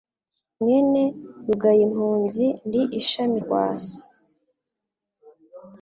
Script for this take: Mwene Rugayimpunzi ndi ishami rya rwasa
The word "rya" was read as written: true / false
false